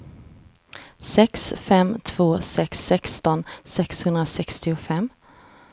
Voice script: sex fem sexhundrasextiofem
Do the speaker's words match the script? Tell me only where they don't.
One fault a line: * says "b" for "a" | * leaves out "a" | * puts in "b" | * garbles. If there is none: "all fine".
* puts in "två sex sexton"